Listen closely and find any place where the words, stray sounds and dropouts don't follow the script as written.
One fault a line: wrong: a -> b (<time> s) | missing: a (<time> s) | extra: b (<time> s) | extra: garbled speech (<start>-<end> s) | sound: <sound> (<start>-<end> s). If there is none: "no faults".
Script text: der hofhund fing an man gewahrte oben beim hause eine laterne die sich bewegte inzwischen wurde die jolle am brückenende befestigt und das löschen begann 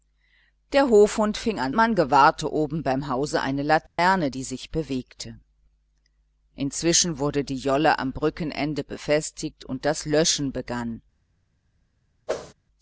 sound: dropout (3.9-4.0 s)
sound: whoosh (12.3-12.5 s)